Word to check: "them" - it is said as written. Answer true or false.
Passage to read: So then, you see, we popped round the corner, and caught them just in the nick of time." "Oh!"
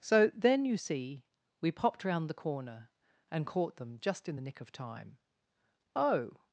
true